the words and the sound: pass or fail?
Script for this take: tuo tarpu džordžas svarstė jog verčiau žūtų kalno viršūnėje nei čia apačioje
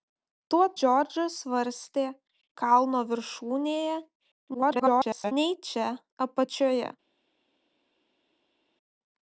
fail